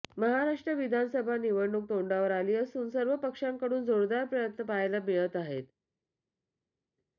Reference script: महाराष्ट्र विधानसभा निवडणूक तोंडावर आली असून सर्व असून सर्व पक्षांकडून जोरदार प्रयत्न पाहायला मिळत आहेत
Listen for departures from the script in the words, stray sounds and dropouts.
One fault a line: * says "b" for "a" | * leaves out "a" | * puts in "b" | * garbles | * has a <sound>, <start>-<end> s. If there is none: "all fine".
* leaves out "असून सर्व"